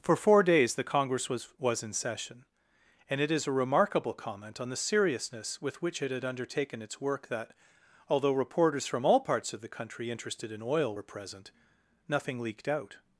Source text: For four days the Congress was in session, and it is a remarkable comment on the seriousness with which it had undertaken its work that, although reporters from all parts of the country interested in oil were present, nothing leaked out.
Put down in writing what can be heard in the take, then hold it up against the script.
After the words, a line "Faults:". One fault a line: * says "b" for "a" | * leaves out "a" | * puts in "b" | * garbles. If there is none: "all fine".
For four days the Congress was was in session, and it is a remarkable comment on the seriousness with which it had undertaken its work that, although reporters from all parts of the country interested in oil were present, nothing leaked out.
Faults:
* puts in "was"